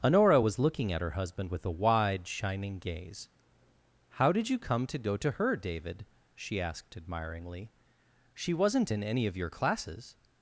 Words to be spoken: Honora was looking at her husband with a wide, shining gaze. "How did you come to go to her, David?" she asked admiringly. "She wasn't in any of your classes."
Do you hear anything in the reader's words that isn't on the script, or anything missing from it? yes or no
no